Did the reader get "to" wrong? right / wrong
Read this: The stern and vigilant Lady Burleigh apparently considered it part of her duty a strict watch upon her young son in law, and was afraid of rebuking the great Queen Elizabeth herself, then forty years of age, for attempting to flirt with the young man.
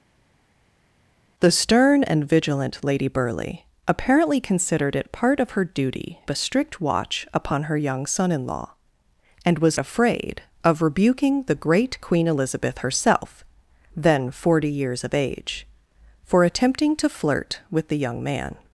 right